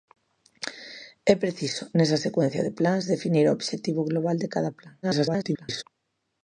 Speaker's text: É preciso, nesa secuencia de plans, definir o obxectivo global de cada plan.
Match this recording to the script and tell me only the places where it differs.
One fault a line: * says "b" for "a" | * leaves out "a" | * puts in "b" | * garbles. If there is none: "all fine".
* garbles